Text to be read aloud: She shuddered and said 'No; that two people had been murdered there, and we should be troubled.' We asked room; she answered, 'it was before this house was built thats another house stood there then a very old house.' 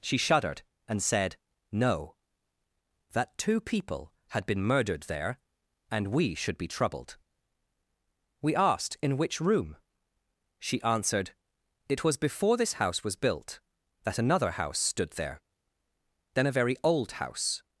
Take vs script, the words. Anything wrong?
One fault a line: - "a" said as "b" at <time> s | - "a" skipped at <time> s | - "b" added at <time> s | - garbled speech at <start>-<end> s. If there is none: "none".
- "in which" added at 9.0 s
- "thats" said as "that" at 14.0 s